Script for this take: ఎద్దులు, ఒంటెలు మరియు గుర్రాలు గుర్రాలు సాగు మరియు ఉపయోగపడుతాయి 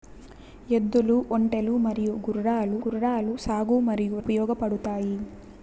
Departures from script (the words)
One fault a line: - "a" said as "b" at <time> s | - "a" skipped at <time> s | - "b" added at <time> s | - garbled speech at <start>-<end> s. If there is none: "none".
none